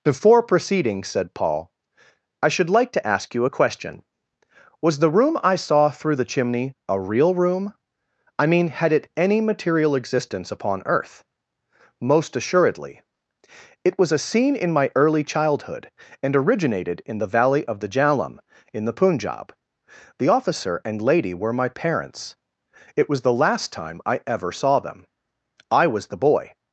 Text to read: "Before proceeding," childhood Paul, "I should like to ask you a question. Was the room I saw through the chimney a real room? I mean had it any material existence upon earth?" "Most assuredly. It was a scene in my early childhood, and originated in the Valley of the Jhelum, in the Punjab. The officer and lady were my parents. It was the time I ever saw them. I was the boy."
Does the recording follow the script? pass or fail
fail